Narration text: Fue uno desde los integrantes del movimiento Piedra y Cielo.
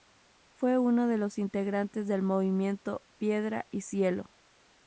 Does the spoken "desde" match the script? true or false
false